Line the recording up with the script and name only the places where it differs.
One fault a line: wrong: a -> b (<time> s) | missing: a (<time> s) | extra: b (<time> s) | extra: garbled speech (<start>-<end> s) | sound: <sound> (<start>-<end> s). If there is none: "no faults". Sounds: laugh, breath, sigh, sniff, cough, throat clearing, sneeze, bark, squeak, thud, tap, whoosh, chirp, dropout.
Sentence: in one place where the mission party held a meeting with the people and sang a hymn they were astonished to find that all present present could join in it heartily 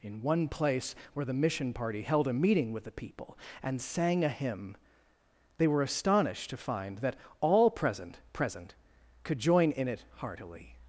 no faults